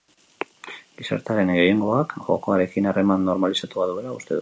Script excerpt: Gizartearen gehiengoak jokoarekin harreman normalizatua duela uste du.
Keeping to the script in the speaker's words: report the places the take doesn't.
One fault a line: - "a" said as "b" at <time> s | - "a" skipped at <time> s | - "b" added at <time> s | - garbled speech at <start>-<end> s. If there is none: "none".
none